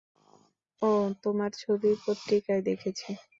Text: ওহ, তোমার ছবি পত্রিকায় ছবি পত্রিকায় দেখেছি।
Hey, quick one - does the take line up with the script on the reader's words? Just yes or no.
no